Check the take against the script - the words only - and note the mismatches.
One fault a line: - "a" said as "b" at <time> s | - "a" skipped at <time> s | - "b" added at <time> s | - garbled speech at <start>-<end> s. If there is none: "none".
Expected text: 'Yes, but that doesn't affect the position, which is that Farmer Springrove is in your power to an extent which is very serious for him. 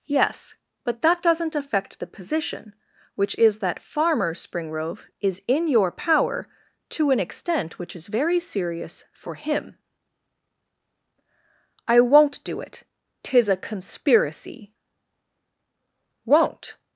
- "I won't do it tis a conspiracy Won't" added at 11.9 s